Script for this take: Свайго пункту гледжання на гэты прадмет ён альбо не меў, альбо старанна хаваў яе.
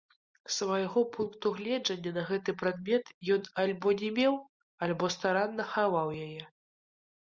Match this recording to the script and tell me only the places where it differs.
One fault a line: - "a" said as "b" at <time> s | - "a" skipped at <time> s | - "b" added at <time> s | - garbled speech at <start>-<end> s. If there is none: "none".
none